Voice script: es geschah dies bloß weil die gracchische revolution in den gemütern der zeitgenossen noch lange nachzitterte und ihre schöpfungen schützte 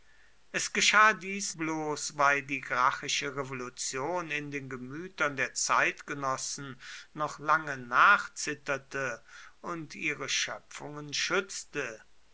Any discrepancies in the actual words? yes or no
no